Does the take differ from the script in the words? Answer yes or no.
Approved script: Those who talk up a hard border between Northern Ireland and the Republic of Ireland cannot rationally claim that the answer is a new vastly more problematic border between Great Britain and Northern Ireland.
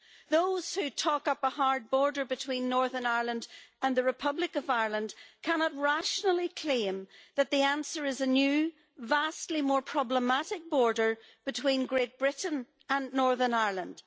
no